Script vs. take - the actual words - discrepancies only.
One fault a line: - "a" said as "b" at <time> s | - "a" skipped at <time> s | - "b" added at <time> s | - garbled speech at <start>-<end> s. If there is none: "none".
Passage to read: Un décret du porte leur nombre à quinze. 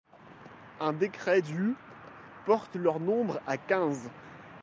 none